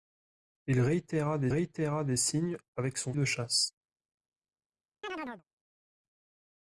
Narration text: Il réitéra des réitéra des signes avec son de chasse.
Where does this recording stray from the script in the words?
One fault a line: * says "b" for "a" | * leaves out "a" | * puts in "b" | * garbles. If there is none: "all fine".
all fine